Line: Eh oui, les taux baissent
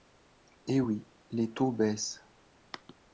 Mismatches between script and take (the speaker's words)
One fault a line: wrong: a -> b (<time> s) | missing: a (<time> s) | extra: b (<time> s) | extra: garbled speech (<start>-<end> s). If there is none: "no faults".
no faults